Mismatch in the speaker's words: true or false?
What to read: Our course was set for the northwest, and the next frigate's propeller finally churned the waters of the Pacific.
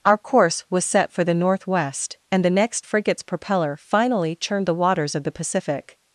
false